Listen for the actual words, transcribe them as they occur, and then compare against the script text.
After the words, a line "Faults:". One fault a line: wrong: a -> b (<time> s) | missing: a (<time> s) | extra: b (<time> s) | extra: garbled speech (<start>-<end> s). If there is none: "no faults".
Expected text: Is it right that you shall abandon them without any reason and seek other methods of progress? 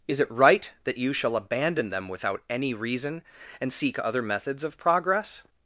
Is it right that you shall abandon them without any reason and seek other methods of progress?
Faults:
no faults